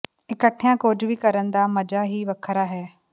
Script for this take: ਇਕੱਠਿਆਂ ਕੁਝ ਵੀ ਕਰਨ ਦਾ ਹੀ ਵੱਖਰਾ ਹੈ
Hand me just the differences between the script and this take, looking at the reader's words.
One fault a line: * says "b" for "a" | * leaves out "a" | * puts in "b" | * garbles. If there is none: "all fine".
* puts in "ਮਜ਼ਾ"